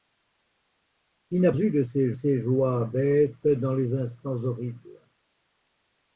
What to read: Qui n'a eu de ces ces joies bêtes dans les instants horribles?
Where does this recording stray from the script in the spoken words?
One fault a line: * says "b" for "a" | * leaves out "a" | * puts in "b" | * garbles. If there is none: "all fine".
all fine